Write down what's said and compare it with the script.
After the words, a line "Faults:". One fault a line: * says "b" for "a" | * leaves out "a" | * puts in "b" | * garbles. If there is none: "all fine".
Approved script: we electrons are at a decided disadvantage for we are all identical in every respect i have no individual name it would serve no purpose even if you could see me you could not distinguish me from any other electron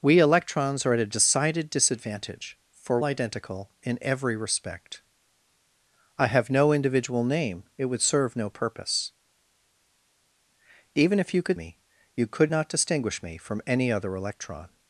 we electrons are at a decided disadvantage for identical in every respect i have no individual name it would serve no purpose even if you could me you could not distinguish me from any other electron
Faults:
* leaves out "we are all"
* leaves out "see"